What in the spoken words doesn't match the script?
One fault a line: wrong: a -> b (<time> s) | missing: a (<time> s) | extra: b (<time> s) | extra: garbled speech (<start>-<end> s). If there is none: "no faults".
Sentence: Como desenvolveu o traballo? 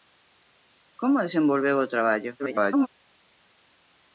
extra: garbled speech (2.4-2.9 s)